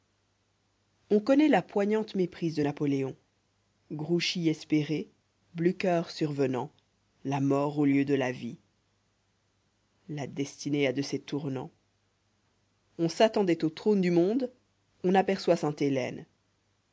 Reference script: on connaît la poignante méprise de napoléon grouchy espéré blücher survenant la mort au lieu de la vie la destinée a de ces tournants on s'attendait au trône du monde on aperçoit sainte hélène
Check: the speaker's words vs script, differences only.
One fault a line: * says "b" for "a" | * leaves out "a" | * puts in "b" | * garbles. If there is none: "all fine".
all fine